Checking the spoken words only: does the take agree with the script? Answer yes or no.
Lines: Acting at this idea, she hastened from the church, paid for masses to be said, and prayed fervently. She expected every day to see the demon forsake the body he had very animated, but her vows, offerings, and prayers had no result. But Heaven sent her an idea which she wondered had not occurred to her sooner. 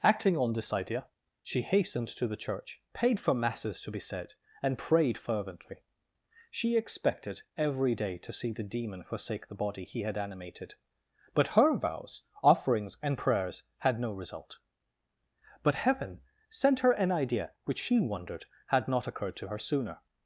no